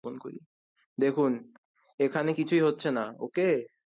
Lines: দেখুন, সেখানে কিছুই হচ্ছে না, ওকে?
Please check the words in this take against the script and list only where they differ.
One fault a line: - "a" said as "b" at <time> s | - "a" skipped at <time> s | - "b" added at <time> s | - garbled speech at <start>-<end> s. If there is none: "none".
- "সেখানে" said as "এখানে" at 2.0 s